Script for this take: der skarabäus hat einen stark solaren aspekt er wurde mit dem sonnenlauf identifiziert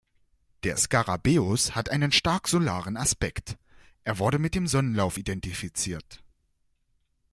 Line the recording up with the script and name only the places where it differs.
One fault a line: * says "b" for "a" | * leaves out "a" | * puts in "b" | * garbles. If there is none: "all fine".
all fine